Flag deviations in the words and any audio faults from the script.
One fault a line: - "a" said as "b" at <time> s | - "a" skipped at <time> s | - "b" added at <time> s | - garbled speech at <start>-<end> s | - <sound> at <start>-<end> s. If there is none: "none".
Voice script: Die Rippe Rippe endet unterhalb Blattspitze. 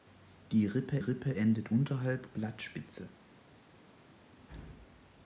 none